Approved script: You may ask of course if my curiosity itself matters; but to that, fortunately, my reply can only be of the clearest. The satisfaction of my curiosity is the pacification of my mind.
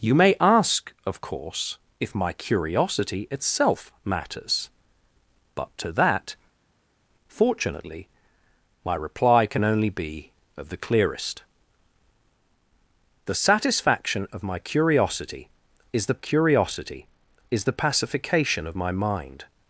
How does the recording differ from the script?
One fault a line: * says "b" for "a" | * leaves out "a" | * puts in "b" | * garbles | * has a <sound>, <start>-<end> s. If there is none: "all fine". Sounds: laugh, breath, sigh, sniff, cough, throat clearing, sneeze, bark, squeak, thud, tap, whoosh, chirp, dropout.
* puts in "curiosity is the"